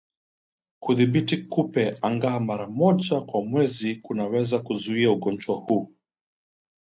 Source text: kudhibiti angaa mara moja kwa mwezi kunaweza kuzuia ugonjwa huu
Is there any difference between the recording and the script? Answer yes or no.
yes